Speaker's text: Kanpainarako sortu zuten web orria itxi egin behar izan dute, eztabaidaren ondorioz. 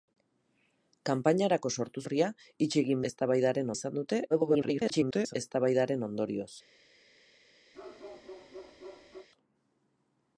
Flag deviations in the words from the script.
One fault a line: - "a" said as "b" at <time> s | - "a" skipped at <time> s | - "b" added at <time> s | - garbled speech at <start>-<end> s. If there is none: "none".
- "zuten web" skipped at 2.0 s
- "behar" said as "eztabaidaren" at 3.1 s
- garbled speech at 4.3-5.3 s